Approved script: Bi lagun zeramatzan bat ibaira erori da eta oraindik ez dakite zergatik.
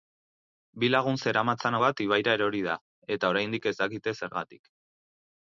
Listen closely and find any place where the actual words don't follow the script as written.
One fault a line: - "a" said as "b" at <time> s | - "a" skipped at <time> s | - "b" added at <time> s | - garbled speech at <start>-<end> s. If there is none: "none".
none